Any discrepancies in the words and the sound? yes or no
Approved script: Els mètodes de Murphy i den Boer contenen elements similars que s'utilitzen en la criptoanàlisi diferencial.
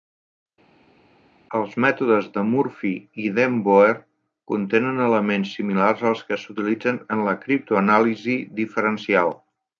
yes